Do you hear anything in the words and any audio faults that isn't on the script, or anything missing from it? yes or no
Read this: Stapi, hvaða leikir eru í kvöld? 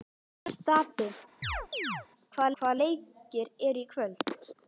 yes